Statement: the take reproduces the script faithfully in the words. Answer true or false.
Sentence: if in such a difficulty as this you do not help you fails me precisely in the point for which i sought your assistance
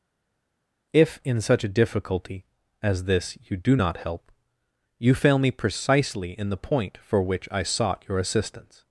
false